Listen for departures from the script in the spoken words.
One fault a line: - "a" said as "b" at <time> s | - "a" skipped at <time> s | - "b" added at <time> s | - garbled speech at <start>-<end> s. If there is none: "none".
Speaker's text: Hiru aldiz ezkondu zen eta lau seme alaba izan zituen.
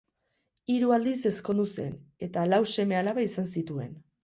none